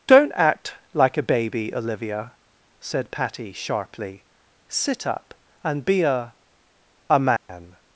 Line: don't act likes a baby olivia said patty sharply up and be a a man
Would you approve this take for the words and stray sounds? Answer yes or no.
no